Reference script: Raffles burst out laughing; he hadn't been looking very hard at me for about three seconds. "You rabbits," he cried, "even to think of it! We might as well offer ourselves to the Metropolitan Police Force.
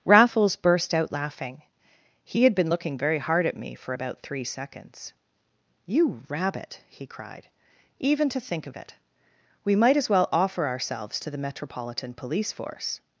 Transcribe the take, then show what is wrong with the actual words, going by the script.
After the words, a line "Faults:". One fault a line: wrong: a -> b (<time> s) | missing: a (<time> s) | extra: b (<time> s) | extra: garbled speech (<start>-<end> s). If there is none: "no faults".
Raffles burst out laughing; he had been looking very hard at me for about three seconds. "You rabbit," he cried, "even to think of it! We might as well offer ourselves to the Metropolitan Police Force.
Faults:
wrong: hadn't -> had (2.4 s)
wrong: rabbits -> rabbit (6.3 s)